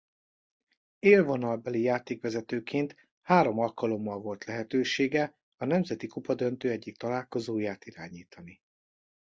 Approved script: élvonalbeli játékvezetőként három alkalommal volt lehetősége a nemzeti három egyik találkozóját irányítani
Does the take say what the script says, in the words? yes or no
no